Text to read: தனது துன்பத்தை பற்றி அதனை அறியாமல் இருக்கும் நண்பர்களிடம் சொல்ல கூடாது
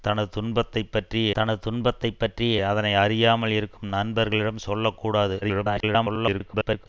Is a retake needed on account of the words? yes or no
yes